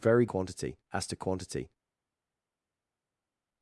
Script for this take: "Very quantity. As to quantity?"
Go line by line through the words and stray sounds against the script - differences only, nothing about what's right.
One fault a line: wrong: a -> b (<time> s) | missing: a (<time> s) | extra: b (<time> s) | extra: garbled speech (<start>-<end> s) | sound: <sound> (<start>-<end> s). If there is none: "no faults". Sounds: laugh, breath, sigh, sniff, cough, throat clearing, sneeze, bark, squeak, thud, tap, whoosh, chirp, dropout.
no faults